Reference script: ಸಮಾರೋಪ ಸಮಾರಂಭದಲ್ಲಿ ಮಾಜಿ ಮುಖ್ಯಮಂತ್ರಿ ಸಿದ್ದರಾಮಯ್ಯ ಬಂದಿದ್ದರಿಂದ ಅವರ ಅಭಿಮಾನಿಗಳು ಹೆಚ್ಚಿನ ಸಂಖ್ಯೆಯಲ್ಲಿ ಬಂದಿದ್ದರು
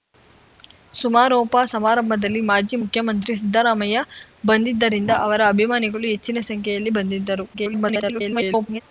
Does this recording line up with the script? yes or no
no